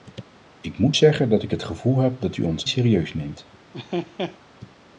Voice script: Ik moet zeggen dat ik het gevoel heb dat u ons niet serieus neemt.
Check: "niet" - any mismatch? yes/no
yes